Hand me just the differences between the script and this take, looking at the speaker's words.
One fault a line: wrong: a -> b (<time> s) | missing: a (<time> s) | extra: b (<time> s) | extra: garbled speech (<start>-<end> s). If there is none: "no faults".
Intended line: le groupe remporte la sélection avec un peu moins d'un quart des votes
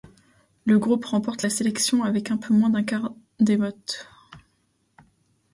no faults